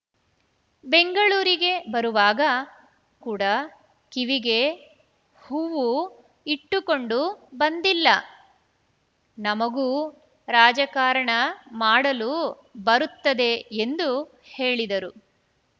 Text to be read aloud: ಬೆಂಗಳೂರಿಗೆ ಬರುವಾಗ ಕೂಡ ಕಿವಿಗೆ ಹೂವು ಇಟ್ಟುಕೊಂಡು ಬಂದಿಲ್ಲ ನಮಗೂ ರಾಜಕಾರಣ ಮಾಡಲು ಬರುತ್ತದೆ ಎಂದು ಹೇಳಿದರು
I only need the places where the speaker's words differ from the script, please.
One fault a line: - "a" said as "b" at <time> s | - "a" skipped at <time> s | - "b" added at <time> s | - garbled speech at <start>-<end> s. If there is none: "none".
none